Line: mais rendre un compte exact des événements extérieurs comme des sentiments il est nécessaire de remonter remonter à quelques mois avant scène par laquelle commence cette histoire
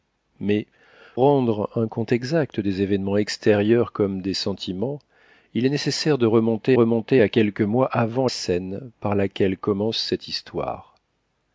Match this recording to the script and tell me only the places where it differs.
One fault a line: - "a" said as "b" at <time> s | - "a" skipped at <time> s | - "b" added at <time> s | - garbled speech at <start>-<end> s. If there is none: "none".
none